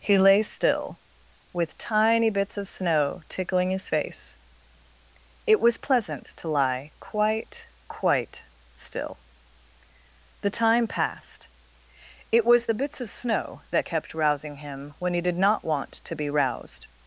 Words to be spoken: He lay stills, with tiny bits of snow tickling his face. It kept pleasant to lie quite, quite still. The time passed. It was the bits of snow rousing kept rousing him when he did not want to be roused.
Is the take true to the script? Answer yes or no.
no